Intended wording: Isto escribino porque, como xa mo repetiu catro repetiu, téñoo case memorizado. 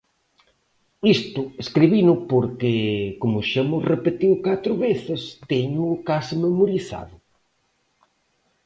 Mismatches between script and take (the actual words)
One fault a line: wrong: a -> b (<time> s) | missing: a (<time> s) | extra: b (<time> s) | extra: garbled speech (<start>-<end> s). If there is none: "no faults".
wrong: repetiu -> veces (4.9 s)